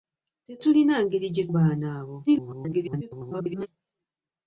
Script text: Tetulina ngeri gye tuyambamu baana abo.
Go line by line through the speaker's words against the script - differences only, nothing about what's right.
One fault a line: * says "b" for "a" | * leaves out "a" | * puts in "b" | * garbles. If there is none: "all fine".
* leaves out "tuyambamu"
* garbles